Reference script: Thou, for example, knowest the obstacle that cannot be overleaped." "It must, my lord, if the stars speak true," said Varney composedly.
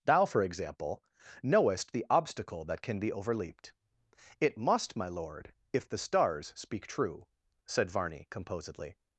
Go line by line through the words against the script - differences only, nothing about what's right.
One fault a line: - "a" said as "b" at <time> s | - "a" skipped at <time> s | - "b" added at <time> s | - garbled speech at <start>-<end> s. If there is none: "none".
- "cannot" said as "can" at 2.8 s